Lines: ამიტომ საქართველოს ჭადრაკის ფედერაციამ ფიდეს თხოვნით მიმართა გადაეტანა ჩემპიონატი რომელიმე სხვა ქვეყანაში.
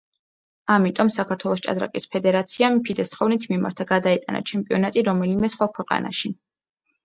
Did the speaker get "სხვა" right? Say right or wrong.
right